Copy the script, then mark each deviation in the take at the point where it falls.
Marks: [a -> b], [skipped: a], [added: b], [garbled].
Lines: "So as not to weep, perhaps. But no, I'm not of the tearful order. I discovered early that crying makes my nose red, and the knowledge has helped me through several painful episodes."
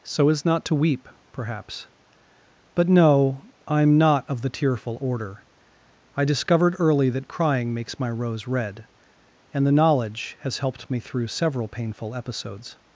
"So as not to weep, perhaps. But no, I'm not of the tearful order. I discovered early that crying makes my [nose -> rose] red, and the knowledge has helped me through several painful episodes."